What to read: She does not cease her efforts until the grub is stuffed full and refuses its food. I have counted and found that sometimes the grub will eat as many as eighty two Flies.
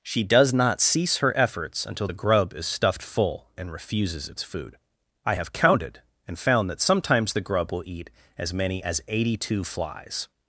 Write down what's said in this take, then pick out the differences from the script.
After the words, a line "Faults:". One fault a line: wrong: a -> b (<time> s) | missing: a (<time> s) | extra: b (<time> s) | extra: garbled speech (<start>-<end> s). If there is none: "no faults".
She does not cease her efforts until the grub is stuffed full and refuses its food. I have counted and found that sometimes the grub will eat as many as eighty two Flies.
Faults:
no faults